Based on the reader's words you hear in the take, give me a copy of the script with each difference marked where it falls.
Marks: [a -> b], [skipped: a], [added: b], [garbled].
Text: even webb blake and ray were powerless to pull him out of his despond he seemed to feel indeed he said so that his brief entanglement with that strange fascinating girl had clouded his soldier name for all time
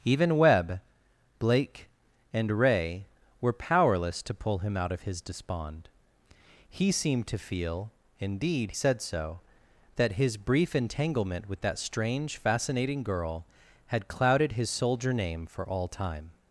even webb blake and ray were powerless to pull him out of his despond he seemed to feel indeed [skipped: he] said so that his brief entanglement with that strange fascinating girl had clouded his soldier name for all time